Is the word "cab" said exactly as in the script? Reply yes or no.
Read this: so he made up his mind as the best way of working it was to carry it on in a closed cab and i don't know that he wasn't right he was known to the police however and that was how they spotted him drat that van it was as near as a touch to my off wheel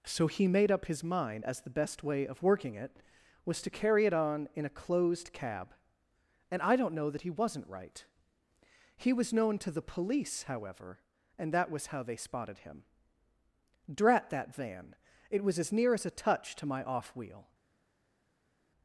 yes